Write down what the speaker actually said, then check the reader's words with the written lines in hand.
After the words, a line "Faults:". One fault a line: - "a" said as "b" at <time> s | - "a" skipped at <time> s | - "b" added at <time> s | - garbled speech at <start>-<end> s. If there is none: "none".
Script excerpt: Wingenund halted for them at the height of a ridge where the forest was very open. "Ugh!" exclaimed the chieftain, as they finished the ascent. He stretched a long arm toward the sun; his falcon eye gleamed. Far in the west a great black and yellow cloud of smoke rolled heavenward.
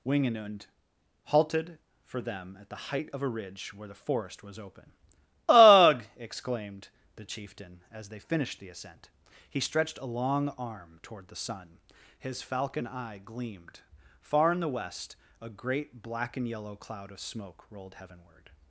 Wingenund halted for them at the height of a ridge where the forest was open. "Ugh!" exclaimed the chieftain, as they finished the ascent. He stretched a long arm toward the sun; his falcon eye gleamed. Far in the west a great black and yellow cloud of smoke rolled heavenward.
Faults:
- "very" skipped at 4.6 s